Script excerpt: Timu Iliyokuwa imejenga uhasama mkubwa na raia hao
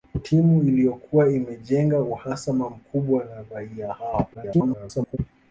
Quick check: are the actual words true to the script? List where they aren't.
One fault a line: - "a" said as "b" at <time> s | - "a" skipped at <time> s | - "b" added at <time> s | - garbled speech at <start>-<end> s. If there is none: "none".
- garbled speech at 4.3-5.2 s